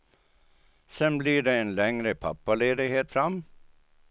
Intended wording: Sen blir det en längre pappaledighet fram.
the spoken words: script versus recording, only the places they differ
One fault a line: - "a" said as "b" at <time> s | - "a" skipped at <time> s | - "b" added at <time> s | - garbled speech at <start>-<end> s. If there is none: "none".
none